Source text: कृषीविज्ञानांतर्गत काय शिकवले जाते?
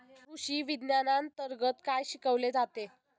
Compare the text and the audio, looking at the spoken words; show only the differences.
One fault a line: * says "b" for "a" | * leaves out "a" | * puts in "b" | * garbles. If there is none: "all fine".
all fine